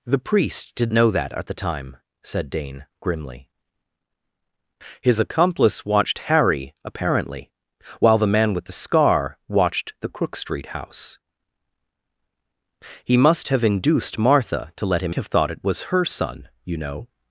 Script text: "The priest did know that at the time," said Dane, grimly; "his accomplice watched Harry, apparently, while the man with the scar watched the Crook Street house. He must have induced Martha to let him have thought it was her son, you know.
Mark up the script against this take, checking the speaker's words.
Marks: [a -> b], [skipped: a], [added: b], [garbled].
"The priest did know that at the time," said Dane, grimly; "his accomplice watched Harry, apparently, while the man with the scar watched the Crook Street house. He must have induced Martha to let him have thought it was her son, you know.